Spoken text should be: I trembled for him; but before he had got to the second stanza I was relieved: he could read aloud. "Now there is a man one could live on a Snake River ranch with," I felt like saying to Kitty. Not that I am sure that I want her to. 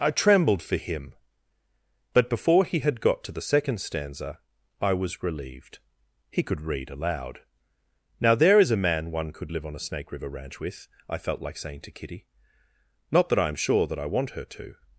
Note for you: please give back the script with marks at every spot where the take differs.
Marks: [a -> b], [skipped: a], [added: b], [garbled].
I trembled for him; but before he had got to the second stanza I was relieved: he could read aloud. "Now there is a man one could live on a Snake River ranch with," I felt like saying to Kitty. Not that I am sure that I want her to.